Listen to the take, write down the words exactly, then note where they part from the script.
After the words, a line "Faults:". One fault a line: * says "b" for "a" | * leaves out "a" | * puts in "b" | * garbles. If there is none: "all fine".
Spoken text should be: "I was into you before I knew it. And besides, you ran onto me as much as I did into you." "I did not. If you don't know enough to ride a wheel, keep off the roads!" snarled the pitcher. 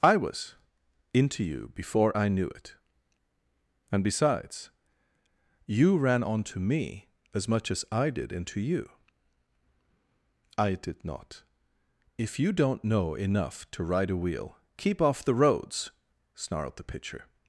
"I was into you before I knew it. And besides, you ran onto me as much as I did into you." "I did not. If you don't know enough to ride a wheel, keep off the roads!" snarled the pitcher.
Faults:
all fine